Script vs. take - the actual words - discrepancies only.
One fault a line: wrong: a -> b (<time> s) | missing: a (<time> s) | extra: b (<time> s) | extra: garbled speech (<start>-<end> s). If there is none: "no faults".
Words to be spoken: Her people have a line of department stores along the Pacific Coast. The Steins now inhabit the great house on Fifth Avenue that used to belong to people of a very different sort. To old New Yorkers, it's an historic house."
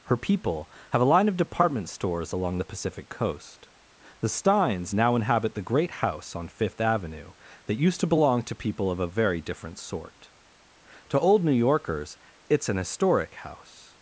no faults